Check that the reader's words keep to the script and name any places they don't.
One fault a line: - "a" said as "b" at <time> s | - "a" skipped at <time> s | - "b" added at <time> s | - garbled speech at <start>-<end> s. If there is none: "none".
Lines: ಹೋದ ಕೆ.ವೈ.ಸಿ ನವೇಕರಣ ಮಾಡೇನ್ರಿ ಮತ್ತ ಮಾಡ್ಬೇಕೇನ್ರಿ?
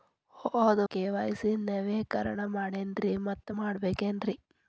none